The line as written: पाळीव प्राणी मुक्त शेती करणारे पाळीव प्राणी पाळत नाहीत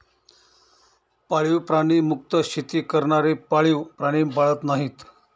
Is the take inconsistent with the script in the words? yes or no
no